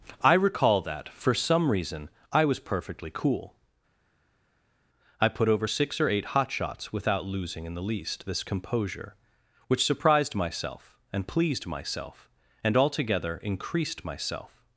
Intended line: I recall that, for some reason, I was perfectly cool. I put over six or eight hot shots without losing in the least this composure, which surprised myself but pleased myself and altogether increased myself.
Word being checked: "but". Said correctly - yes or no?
no